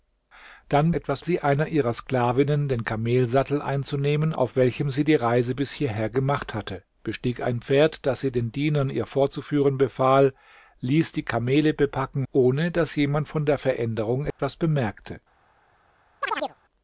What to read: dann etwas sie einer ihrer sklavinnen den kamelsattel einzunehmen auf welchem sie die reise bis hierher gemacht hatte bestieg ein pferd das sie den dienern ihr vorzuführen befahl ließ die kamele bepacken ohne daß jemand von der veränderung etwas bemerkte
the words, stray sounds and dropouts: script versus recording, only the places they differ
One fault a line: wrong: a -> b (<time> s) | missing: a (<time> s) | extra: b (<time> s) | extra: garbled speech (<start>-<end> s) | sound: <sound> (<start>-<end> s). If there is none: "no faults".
sound: dropout (14.3-14.4 s)
sound: chirp (16.2-16.6 s)